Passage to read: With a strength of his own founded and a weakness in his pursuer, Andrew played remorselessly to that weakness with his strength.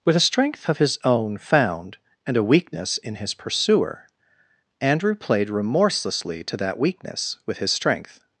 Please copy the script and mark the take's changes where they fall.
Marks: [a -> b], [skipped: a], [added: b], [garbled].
With a strength of his own [founded -> found] and a weakness in his pursuer, Andrew played remorselessly to that weakness with his strength.